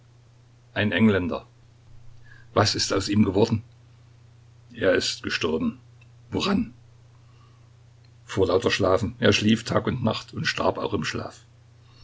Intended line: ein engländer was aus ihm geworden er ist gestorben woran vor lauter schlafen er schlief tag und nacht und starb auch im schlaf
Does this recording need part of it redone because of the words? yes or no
yes